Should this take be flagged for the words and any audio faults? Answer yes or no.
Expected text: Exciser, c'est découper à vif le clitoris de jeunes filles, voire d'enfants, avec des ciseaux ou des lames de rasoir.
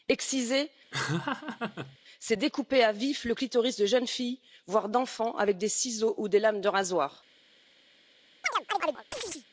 yes